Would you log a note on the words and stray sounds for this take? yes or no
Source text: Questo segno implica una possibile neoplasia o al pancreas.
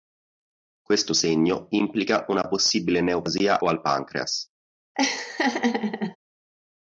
yes